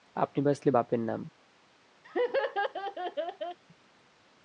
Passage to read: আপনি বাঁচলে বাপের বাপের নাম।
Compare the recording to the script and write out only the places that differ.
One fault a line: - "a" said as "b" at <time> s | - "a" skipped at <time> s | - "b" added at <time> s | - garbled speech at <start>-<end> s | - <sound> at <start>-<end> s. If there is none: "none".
- "বাপের" skipped at 1.0 s
- laugh at 2.0-3.6 s